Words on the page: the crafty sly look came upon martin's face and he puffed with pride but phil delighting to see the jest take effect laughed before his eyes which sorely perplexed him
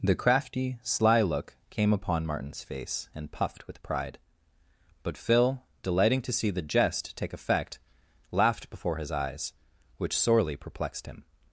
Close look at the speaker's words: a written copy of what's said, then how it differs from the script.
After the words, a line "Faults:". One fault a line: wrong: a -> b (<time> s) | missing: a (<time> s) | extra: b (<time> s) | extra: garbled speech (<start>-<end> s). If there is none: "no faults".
the crafty sly look came upon martin's face and puffed with pride but phil delighting to see the jest take effect laughed before his eyes which sorely perplexed him
Faults:
missing: he (3.3 s)